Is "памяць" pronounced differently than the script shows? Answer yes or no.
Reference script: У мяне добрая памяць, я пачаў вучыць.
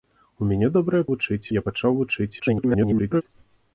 yes